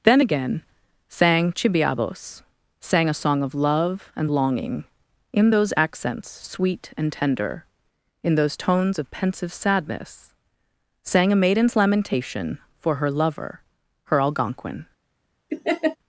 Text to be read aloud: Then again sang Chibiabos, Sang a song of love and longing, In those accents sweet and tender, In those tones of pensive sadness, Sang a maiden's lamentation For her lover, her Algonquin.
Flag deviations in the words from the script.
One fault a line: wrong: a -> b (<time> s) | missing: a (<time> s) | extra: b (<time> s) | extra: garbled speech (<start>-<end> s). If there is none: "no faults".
no faults